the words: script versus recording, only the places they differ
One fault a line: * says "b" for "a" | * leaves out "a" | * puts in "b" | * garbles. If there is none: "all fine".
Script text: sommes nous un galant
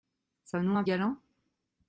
all fine